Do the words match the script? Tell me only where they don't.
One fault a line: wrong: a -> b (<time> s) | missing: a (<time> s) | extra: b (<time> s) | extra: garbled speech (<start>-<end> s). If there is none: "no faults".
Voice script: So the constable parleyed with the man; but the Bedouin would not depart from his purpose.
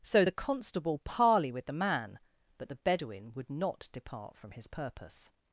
wrong: parleyed -> parley (1.0 s)